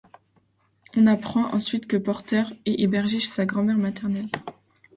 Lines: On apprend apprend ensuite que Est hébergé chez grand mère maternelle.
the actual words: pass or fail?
fail